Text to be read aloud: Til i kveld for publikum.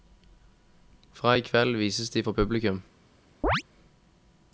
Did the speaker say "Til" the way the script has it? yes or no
no